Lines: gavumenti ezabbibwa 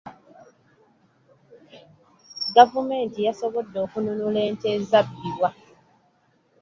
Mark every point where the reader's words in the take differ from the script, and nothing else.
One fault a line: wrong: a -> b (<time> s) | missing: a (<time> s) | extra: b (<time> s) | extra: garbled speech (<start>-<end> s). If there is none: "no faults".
extra: yasobodde okununula ente (3.3 s)